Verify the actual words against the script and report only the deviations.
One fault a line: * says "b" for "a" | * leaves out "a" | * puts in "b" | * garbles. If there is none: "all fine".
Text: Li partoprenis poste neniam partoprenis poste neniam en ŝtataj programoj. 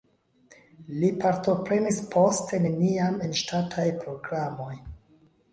* leaves out "partoprenis poste neniam"